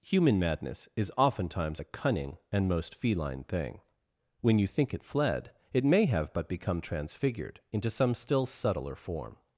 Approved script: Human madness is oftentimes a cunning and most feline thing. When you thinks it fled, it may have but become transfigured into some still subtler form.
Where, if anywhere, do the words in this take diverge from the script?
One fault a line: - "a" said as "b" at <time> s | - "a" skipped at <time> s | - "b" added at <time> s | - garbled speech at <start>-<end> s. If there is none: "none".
- "thinks" said as "think" at 4.6 s